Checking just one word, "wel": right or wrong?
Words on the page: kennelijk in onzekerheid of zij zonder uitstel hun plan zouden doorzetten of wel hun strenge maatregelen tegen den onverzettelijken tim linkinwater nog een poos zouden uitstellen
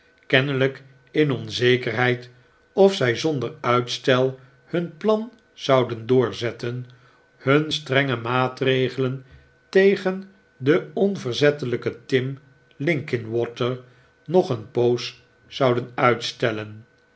wrong